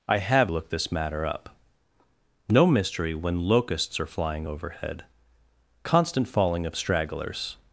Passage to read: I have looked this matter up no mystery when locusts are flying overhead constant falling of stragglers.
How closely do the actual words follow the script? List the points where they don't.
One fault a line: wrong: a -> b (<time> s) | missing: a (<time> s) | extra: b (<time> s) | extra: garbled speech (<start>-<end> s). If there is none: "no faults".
no faults